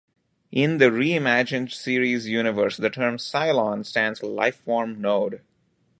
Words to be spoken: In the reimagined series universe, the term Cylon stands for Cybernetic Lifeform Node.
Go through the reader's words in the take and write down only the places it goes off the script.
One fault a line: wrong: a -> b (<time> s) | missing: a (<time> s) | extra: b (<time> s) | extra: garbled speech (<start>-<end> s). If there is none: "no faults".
missing: for Cybernetic (4.2 s)